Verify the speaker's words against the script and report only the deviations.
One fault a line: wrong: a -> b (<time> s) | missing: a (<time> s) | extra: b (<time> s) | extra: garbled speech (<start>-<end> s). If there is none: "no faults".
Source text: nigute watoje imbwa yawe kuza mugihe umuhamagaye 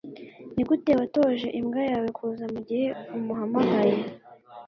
no faults